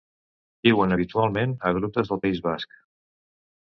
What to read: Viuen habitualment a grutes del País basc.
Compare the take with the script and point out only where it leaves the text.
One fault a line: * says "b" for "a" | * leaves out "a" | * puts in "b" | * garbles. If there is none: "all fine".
all fine